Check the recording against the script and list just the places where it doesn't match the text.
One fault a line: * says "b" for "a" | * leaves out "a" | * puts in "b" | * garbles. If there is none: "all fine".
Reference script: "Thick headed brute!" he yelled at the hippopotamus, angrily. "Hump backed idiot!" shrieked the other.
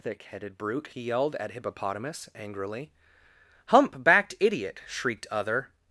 * leaves out "the"
* leaves out "the"